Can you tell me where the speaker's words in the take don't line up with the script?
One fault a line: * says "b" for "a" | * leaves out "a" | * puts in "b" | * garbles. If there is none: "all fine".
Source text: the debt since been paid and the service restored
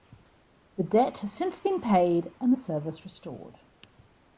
* puts in "has"